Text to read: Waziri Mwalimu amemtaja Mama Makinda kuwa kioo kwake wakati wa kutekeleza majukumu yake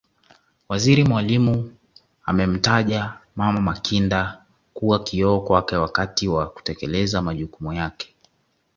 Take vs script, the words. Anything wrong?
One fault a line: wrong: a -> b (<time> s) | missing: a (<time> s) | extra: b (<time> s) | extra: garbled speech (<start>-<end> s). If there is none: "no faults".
no faults